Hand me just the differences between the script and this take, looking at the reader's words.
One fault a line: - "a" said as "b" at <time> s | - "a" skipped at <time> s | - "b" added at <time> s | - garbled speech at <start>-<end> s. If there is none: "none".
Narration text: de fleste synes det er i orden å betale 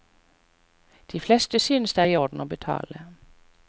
none